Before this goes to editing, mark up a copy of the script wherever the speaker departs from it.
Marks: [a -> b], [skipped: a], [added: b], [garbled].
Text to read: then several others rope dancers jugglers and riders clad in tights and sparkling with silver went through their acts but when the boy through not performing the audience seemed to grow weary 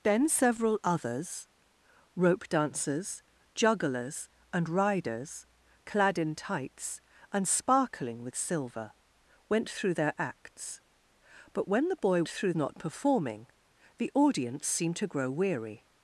then several others rope dancers jugglers and riders clad in tights and sparkling with silver went through their acts but when the boy through not performing the audience seemed to grow weary